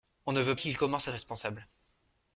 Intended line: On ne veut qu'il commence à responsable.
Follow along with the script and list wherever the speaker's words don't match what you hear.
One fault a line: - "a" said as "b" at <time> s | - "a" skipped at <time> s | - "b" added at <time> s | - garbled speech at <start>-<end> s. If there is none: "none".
none